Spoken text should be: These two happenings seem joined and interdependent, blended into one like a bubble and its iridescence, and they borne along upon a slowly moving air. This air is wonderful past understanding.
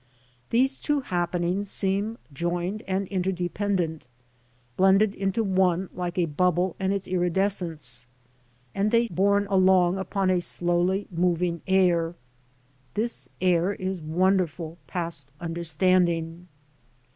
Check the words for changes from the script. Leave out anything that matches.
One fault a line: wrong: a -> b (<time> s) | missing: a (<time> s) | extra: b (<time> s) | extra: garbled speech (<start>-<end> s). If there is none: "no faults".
no faults